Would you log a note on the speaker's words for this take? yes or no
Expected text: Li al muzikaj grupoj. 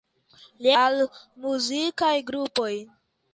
no